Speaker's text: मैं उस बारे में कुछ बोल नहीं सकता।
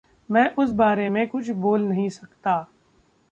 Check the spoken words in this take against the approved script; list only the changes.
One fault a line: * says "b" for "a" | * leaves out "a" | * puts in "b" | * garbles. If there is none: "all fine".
all fine